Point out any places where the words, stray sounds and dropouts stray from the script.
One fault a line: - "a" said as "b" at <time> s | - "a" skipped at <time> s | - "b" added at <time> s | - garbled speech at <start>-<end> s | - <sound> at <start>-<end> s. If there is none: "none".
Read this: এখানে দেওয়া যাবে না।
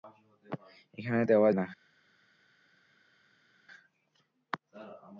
- "যাবে" skipped at 1.5 s